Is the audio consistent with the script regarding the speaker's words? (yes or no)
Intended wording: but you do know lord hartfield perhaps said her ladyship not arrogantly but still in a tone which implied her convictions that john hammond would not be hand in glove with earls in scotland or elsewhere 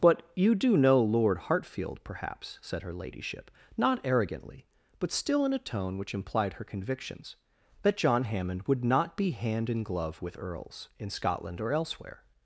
yes